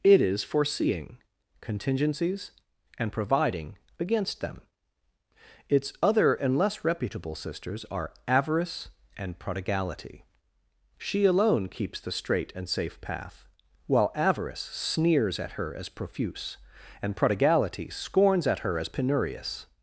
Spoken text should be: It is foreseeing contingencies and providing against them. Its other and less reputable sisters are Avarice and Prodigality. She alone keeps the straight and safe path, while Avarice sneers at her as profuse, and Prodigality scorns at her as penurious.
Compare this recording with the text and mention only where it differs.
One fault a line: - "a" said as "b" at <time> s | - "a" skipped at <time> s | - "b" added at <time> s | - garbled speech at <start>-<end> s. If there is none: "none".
none